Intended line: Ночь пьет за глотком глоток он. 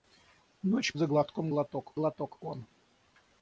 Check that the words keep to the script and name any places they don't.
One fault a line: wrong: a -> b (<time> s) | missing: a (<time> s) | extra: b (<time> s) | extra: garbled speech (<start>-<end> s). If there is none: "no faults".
missing: пьет (0.9 s)
extra: глоток (1.9 s)